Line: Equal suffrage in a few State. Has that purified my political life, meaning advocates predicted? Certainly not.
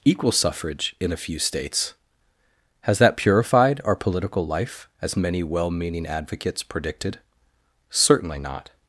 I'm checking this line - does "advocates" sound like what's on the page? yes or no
yes